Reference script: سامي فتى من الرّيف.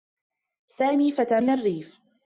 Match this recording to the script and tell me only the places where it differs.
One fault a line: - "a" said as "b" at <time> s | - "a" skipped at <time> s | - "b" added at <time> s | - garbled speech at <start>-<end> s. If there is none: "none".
none